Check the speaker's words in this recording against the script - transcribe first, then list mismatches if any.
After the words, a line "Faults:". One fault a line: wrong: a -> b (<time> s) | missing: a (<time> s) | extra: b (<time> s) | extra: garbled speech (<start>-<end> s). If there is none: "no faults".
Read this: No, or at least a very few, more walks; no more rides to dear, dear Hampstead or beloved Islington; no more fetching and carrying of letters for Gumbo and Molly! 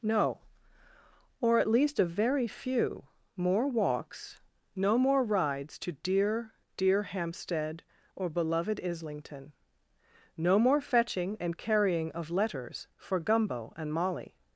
No, or at least a very few, more walks; no more rides to dear, dear Hampstead or beloved Islington; no more fetching and carrying of letters for Gumbo and Molly!
Faults:
no faults